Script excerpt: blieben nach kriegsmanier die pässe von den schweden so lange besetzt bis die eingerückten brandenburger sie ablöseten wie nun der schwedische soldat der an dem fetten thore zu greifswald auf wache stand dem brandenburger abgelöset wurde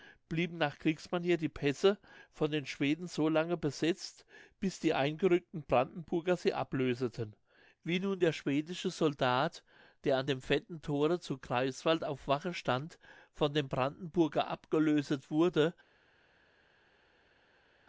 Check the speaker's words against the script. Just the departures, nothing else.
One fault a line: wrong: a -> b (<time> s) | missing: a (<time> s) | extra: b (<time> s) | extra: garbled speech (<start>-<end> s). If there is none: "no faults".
extra: von (13.3 s)